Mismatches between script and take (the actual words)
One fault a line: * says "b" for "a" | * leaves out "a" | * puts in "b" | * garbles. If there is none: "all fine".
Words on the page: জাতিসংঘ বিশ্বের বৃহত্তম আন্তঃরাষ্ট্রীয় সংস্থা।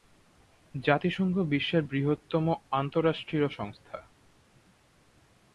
all fine